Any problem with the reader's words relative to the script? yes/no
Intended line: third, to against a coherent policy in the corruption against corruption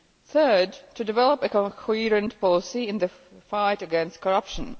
yes